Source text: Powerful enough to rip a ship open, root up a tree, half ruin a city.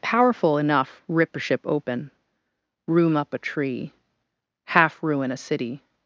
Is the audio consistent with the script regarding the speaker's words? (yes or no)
no